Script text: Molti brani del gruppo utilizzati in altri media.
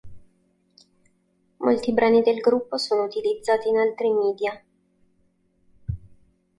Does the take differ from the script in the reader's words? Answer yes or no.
yes